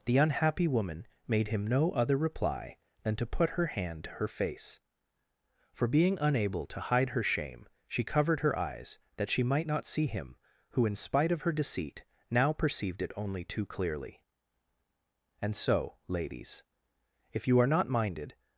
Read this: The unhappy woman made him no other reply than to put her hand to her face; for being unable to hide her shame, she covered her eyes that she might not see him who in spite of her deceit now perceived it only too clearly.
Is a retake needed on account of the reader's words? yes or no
yes